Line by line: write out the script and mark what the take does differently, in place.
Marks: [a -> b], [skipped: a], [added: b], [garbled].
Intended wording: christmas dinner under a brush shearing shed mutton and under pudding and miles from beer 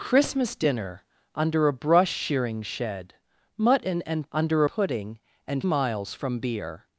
christmas dinner under a brush shearing shed mutton and under pudding and miles from beer